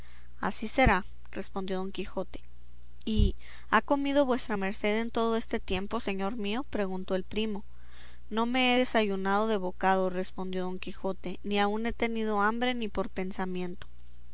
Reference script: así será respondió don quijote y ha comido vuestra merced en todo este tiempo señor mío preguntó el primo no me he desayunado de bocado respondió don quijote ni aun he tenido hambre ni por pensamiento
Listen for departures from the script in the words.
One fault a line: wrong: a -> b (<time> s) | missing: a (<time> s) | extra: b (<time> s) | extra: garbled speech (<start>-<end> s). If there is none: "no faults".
no faults